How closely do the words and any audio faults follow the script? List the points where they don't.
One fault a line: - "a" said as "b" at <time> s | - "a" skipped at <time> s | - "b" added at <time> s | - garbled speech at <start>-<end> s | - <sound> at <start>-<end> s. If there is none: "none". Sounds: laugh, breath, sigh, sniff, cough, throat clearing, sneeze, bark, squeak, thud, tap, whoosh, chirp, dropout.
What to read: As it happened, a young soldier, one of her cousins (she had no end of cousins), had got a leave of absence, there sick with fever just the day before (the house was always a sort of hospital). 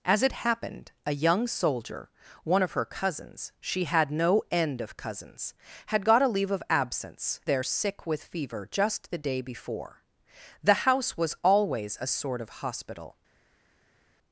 none